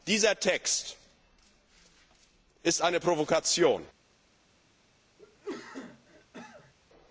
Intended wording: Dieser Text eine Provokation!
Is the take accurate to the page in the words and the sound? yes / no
no